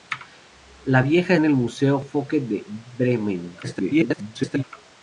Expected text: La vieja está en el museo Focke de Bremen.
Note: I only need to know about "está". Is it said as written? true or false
false